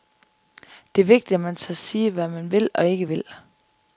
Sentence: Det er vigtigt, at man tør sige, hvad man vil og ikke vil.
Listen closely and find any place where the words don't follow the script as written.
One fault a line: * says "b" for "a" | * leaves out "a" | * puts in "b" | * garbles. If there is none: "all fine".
all fine